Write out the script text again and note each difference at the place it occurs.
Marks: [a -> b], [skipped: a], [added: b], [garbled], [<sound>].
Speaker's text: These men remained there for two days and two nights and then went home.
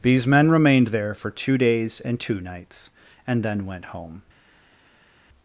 These men remained there for two days and two nights and then went home.